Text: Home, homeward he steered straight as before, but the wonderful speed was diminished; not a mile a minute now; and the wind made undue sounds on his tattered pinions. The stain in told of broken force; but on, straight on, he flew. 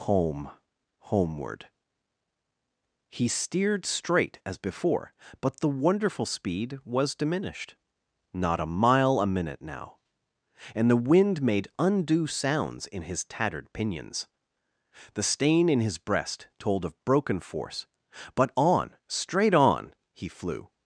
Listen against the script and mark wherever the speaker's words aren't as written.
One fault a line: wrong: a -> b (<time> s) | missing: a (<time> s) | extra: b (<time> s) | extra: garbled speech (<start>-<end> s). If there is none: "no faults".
wrong: on -> in (12.9 s)
extra: his breast (15.8 s)